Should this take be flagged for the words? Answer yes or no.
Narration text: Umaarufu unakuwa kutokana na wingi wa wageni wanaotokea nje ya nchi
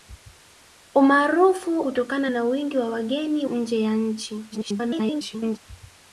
yes